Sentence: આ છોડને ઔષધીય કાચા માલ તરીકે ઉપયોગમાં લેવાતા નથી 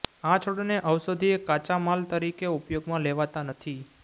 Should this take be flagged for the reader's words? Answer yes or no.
no